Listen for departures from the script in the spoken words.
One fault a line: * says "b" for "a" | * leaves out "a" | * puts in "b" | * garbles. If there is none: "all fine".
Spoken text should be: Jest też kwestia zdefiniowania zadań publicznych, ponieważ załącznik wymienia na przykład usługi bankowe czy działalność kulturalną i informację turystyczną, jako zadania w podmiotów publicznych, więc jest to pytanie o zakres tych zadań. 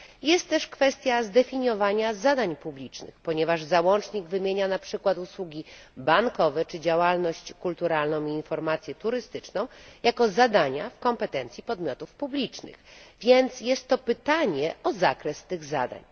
* puts in "kompetencji"